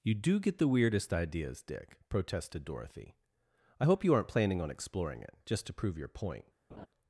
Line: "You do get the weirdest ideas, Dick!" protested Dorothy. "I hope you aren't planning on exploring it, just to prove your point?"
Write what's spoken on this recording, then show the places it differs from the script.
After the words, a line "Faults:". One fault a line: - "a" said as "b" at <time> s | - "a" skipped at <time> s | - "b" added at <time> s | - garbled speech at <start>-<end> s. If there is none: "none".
"You do get the weirdest ideas, Dick!" protested Dorothy. "I hope you aren't planning on exploring it, just to prove your point?"
Faults:
none